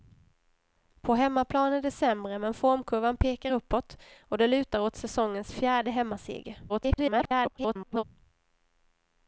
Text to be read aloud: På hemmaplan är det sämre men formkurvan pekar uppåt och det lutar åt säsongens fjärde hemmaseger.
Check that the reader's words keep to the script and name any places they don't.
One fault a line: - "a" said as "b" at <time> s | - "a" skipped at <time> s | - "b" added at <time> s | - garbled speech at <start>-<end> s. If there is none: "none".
- garbled speech at 6.7-8.0 s